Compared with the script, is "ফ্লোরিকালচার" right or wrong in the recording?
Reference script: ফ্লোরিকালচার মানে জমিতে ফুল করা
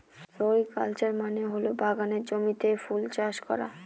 right